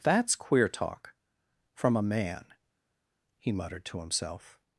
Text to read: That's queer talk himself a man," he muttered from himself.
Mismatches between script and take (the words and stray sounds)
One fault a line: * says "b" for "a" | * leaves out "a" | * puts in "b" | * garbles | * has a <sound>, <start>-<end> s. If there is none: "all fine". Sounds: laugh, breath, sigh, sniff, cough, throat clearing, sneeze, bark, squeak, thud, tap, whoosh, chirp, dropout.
* says "from" for "himself"
* says "to" for "from"